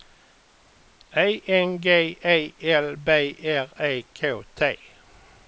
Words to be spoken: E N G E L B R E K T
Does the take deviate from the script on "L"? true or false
false